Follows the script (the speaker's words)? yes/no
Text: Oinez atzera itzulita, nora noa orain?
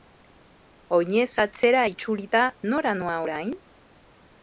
yes